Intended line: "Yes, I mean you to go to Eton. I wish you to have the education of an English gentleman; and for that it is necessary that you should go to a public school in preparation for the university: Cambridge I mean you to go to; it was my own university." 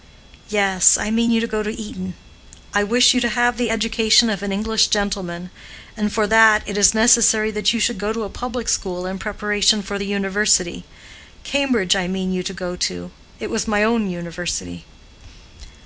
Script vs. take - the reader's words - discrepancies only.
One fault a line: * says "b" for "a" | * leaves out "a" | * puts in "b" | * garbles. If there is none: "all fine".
all fine